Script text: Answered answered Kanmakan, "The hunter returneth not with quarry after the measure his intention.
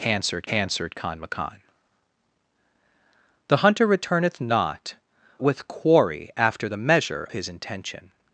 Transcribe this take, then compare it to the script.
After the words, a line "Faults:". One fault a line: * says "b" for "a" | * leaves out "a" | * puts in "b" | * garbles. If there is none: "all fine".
Answered answered Kanmakan, "The hunter returneth not with quarry after the measure his intention.
Faults:
all fine